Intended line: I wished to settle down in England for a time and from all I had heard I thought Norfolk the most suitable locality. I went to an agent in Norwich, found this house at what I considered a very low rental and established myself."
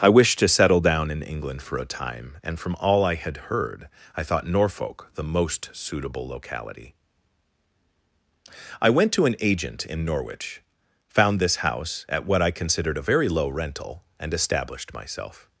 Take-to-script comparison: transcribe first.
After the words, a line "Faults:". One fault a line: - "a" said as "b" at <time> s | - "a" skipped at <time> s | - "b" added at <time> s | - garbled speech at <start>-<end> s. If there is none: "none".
I wished to settle down in England for a time and from all I had heard I thought Norfolk the most suitable locality. I went to an agent in Norwich, found this house at what I considered a very low rental and established myself."
Faults:
none